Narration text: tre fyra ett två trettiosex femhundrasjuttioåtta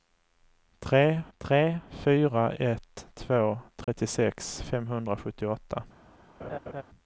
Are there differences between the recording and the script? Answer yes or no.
yes